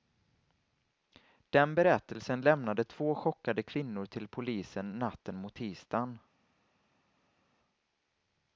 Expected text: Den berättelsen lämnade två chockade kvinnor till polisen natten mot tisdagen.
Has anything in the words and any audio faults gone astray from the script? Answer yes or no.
no